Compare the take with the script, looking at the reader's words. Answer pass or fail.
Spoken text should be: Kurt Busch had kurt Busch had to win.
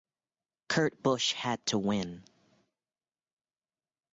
fail